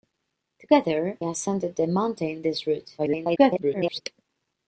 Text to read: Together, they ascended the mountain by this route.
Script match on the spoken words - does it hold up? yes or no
no